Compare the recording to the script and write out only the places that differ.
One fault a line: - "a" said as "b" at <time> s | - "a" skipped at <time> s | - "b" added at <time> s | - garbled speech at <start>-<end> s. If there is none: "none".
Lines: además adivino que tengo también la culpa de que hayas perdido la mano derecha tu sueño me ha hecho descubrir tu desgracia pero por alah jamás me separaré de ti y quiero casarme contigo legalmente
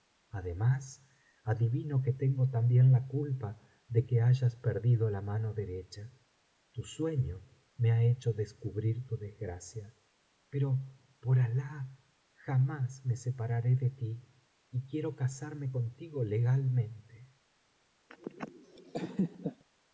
none